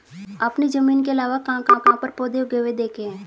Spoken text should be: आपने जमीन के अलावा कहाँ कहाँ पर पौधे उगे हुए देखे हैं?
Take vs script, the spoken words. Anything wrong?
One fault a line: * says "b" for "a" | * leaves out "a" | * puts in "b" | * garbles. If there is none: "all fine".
* puts in "कहाँ"